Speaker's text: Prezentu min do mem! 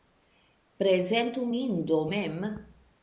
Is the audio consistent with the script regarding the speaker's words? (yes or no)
yes